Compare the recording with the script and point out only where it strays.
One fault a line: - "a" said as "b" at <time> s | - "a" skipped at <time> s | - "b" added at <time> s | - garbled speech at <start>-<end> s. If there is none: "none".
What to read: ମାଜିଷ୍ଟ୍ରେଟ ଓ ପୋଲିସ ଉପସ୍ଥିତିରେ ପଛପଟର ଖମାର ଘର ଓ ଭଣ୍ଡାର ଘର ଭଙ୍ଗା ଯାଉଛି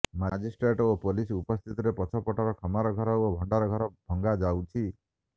none